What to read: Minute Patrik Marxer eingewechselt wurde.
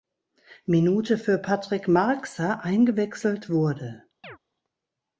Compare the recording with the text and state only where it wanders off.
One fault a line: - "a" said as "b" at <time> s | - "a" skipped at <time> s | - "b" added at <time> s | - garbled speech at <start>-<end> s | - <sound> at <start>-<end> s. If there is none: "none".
- "für" added at 1.2 s
- chirp at 4.2-4.4 s